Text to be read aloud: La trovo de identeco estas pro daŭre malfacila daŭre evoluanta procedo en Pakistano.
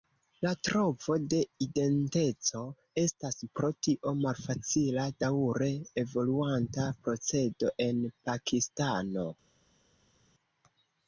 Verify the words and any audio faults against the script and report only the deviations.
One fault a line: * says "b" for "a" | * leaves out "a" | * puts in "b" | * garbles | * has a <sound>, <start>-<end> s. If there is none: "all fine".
* says "tio" for "daŭre"